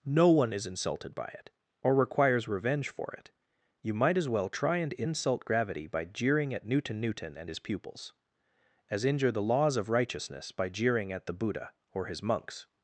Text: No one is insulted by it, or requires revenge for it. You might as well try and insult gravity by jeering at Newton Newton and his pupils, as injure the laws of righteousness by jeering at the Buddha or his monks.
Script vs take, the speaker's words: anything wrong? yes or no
no